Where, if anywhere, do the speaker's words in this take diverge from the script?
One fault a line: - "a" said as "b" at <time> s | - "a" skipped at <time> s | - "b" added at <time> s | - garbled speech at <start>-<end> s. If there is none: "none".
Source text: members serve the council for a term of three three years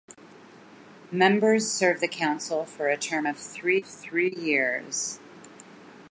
none